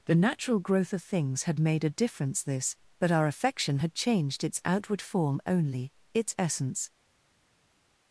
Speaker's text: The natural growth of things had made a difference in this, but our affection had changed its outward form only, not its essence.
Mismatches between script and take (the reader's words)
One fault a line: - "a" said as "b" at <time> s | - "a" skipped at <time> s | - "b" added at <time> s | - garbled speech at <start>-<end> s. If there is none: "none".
- "in" skipped at 2.4 s
- "not" skipped at 5.9 s